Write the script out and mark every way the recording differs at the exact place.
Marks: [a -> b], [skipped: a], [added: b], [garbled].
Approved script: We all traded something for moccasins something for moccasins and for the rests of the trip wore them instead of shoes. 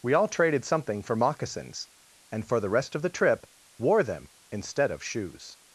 We all traded something for moccasins [skipped: something for moccasins] and for the [rests -> rest] of the trip wore them instead of shoes.